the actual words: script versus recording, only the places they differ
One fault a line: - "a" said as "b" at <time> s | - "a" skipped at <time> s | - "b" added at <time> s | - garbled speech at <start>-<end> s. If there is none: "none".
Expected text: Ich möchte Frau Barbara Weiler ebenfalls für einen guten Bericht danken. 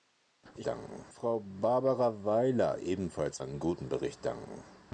- "möchte" said as "danken" at 0.7 s
- "für" skipped at 3.4 s